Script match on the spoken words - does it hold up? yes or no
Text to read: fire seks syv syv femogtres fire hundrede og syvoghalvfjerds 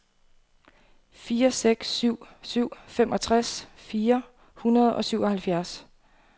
yes